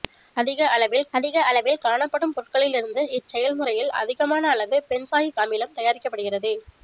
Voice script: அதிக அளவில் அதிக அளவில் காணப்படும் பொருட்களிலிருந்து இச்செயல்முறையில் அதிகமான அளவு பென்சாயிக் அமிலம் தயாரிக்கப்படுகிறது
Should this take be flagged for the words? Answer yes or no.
no